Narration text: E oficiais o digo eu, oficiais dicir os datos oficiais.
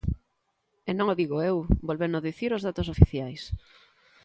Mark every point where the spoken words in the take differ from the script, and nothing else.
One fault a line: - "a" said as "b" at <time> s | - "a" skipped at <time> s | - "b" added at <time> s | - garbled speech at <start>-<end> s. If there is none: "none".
- "oficiais" said as "non" at 1.0 s
- "oficiais" said as "vólveno" at 1.9 s